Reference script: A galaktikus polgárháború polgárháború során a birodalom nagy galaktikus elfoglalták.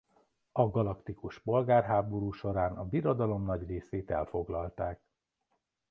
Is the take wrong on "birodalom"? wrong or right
right